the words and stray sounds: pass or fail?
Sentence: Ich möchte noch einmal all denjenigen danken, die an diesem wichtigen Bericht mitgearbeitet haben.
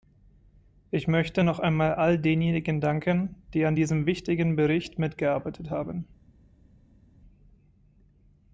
pass